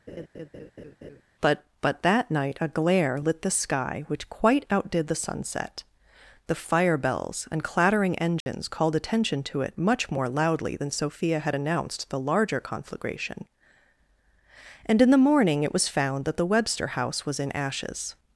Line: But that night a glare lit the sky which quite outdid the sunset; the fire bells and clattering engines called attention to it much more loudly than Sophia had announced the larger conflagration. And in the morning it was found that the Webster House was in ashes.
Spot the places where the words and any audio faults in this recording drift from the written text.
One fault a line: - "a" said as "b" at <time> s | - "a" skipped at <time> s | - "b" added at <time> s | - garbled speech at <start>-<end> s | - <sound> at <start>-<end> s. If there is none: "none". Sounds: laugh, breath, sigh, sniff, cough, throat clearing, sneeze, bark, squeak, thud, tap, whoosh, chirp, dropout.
- laugh at 0.1-1.2 s
- "but" added at 1.8 s
- dropout at 8.4-8.5 s